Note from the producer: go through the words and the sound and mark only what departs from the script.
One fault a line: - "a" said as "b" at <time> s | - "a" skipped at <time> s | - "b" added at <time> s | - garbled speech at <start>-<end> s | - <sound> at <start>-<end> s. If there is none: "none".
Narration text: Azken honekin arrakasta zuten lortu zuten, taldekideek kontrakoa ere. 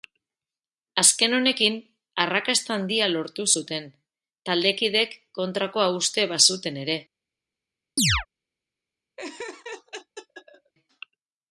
- "zuten" said as "handia" at 2.8 s
- "uste bazuten" added at 6.0 s
- chirp at 8.0-8.3 s
- laugh at 9.2-10.7 s